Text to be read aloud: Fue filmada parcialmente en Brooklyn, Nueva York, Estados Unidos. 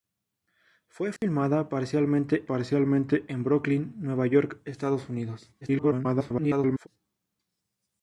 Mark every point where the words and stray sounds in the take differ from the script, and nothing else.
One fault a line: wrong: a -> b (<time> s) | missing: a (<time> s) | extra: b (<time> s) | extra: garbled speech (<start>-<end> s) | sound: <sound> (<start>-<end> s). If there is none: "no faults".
sound: dropout (1.2-1.2 s)
extra: parcialmente (2.5 s)
extra: garbled speech (5.6-6.9 s)